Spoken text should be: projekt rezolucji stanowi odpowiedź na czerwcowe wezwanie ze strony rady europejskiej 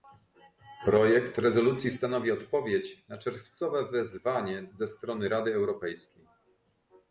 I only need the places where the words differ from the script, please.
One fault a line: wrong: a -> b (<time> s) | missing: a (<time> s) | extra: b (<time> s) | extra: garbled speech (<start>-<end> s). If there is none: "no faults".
no faults